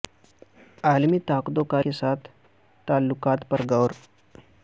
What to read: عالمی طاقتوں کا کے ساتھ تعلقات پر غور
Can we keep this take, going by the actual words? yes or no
yes